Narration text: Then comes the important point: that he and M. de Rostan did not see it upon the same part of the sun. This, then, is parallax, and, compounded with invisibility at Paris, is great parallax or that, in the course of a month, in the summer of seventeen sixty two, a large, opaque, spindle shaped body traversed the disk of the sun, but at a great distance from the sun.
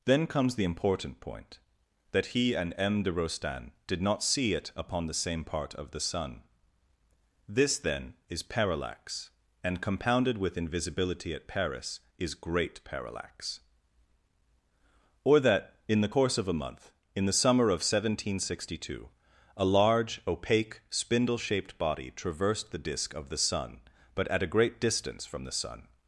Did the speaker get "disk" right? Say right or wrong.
right